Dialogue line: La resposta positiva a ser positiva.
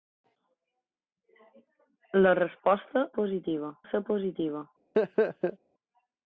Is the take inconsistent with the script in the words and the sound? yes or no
yes